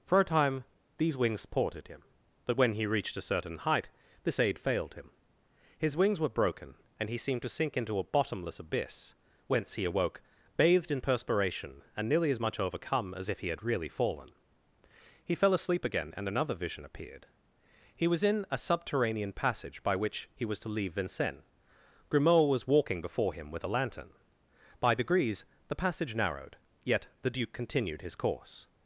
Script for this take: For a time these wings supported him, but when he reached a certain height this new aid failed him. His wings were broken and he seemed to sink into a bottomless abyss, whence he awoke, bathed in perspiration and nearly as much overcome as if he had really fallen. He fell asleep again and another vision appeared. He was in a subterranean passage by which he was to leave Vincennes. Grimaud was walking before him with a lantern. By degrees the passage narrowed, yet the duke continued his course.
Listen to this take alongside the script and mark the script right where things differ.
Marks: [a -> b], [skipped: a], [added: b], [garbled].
For a time these wings supported him, but when he reached a certain height this [skipped: new] aid failed him. His wings were broken and he seemed to sink into a bottomless abyss, whence he awoke, bathed in perspiration and nearly as much overcome as if he had really fallen. He fell asleep again and another vision appeared. He was in a subterranean passage by which he was to leave Vincennes. Grimaud was walking before him with a lantern. By degrees the passage narrowed, yet the duke continued his course.